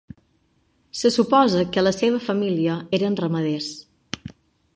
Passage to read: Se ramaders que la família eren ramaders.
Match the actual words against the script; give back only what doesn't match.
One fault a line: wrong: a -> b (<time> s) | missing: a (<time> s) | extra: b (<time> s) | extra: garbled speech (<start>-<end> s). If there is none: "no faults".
wrong: ramaders -> suposa (1.1 s)
extra: seva (2.0 s)